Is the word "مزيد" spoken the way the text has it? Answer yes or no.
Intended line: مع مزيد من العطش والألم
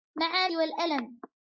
no